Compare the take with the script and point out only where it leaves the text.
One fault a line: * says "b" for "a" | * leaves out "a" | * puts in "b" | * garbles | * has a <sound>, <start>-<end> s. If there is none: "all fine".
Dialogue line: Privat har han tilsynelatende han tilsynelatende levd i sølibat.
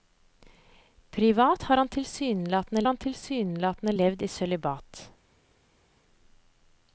all fine